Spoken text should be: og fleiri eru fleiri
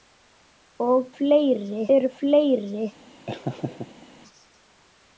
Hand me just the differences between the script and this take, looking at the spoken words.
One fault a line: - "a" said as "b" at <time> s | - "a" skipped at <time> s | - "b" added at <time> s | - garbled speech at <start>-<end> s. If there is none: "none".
none